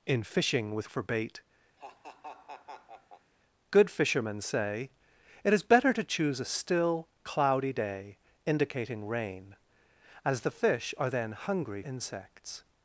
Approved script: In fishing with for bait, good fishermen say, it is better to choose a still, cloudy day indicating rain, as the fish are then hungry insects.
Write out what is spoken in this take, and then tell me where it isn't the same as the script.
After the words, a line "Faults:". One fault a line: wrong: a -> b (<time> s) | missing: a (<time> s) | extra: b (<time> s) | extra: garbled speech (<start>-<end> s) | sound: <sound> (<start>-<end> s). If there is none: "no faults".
In fishing with for bait, good fishermen say, it is better to choose a still, cloudy day indicating rain, as the fish are then hungry insects.
Faults:
sound: laugh (1.8-3.3 s)